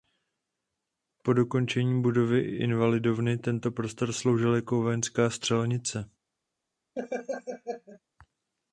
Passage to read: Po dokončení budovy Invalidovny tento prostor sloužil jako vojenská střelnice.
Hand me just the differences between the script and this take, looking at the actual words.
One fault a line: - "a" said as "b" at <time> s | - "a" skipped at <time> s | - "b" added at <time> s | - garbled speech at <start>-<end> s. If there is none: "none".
none